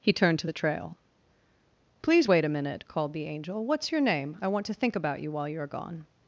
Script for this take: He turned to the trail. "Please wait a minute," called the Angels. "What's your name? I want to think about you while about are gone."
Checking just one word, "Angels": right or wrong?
wrong